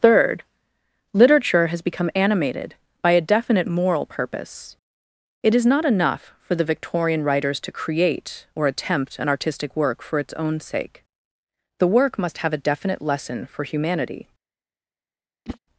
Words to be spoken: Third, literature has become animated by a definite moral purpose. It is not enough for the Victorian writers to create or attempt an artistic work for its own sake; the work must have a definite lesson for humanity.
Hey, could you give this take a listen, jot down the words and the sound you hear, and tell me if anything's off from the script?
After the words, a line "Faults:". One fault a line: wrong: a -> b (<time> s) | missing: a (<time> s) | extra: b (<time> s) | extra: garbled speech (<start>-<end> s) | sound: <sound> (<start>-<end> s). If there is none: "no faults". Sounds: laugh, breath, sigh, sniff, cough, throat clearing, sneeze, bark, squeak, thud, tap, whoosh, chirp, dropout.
Third, literature has become animated by a definite moral purpose. It is not enough for the Victorian writers to create or attempt an artistic work for its own sake; the work must have a definite lesson for humanity.
Faults:
sound: whoosh (15.5-15.6 s)